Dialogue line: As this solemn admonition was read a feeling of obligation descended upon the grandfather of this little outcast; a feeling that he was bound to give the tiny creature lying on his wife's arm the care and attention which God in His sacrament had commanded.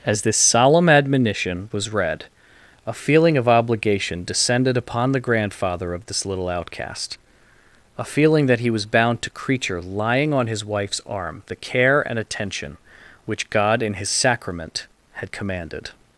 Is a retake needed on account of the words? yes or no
yes